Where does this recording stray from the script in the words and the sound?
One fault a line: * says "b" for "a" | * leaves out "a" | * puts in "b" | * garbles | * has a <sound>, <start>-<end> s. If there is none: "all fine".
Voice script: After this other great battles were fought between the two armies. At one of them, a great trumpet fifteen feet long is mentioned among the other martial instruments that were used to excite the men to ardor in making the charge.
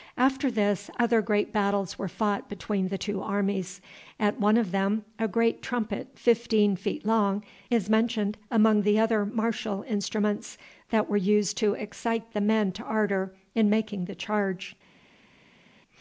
all fine